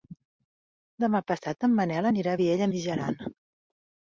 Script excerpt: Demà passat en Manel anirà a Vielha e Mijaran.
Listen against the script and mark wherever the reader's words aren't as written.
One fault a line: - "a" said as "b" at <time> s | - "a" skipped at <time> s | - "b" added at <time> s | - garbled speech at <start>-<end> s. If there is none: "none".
none